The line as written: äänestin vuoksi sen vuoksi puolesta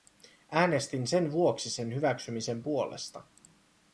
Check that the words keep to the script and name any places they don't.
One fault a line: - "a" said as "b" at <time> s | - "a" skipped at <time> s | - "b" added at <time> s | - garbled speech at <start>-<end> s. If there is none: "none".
- "sen" added at 1.1 s
- "vuoksi" said as "hyväksymisen" at 1.9 s